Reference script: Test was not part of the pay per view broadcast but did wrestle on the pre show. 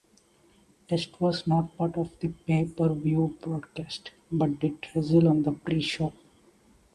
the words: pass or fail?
pass